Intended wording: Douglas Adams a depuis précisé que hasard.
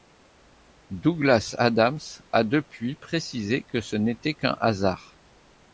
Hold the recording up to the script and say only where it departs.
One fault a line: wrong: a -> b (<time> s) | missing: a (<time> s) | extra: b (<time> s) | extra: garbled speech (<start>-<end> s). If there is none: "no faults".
extra: ce n'était qu'un (3.8 s)